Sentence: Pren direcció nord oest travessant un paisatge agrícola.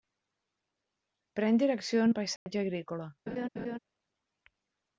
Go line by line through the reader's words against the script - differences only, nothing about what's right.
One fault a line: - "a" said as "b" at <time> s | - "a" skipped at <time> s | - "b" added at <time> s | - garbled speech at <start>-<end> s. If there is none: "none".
- "nord oest travessant" skipped at 2.1 s